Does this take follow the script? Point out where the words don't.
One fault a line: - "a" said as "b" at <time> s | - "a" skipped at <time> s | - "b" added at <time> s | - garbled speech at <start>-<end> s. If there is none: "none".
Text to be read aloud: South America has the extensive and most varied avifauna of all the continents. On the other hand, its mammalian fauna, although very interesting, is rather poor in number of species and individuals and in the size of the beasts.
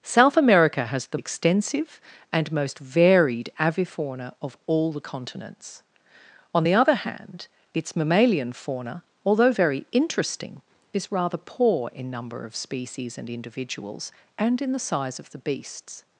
none